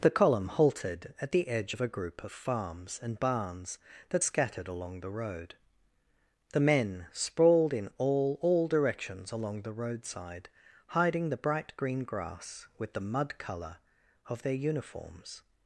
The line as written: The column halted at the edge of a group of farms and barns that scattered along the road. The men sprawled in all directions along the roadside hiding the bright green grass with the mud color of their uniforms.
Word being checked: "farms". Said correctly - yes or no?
yes